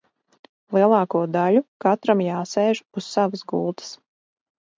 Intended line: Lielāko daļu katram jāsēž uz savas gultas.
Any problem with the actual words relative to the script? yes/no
no